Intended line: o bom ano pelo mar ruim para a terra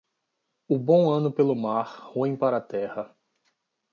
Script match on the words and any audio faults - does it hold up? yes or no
yes